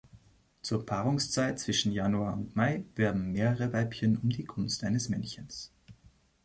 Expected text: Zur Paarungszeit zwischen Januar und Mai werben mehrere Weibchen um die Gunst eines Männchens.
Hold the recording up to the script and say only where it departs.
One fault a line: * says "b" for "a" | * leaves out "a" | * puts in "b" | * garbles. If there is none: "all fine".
all fine